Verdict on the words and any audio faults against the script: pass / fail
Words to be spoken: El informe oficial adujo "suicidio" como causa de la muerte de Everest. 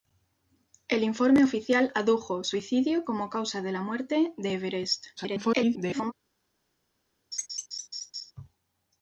fail